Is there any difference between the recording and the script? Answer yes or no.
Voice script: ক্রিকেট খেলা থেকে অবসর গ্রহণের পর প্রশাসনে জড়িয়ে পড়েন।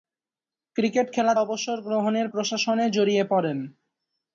yes